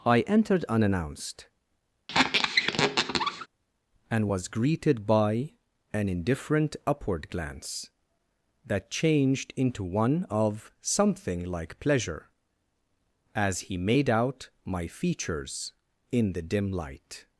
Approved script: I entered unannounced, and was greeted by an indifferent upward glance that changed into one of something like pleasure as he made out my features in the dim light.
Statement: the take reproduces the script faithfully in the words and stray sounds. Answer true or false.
false